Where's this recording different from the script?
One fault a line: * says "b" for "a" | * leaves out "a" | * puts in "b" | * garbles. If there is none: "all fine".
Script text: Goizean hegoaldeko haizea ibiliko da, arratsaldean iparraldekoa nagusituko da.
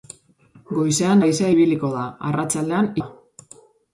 * leaves out "hegoaldeko"
* leaves out "iparraldekoa nagusituko"